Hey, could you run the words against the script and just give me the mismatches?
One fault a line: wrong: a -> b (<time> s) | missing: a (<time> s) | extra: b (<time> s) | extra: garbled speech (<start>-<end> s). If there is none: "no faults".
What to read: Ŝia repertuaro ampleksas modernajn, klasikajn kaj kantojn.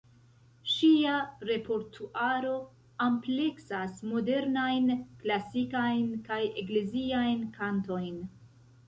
extra: ekleziajn (6.6 s)